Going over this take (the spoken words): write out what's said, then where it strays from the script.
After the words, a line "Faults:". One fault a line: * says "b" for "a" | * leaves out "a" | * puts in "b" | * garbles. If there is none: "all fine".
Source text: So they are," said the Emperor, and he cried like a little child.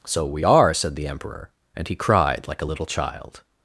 So we are," said the Emperor, and he cried like a little child.
Faults:
* says "we" for "they"